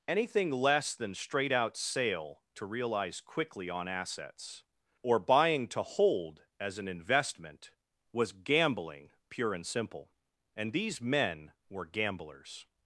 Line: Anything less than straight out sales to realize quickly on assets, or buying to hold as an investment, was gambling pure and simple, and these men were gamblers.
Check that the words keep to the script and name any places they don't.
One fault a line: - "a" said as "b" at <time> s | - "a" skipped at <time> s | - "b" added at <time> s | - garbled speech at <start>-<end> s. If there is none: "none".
- "sales" said as "sale" at 1.8 s